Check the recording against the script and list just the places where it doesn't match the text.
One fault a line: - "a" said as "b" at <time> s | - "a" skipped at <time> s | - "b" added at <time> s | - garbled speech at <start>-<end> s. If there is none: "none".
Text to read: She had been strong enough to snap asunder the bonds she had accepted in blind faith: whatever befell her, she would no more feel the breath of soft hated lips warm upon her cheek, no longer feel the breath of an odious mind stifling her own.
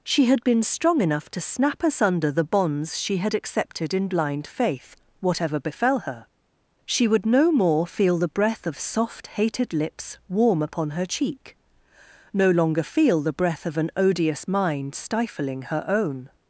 none